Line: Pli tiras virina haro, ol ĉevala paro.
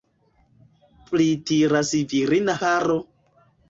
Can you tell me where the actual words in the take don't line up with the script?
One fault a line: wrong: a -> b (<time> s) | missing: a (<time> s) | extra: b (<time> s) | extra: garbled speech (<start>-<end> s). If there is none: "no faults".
missing: haro ol ĉevala (2.6 s)